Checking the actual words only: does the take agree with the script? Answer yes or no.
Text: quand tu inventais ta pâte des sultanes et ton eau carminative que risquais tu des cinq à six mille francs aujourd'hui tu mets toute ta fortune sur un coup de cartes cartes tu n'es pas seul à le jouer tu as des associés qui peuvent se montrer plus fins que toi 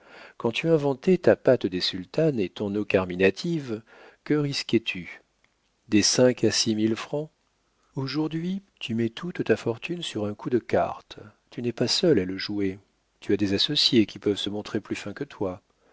no